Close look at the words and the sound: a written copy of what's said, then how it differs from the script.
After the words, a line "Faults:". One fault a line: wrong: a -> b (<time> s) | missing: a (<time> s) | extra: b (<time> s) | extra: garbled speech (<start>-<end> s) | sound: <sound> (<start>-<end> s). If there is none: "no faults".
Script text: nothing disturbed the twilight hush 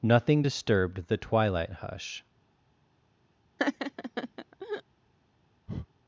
nothing disturbed the twilight hush
Faults:
sound: laugh (3.6-4.8 s)
sound: breath (5.7-5.9 s)